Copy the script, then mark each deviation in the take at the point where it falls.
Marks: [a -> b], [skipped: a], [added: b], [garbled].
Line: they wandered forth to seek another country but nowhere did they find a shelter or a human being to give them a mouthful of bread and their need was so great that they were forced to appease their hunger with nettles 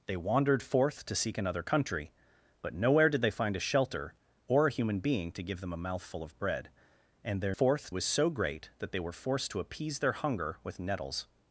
they wandered forth to seek another country but nowhere did they find a shelter or a human being to give them a mouthful of bread and their [need -> forth] was so great that they were forced to appease their hunger with nettles